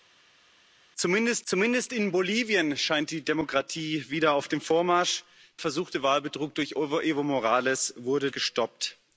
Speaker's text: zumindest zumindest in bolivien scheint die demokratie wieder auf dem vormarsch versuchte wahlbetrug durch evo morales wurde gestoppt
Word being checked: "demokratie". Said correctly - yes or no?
yes